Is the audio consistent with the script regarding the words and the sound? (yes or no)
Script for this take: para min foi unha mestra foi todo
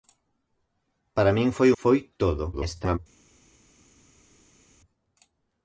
no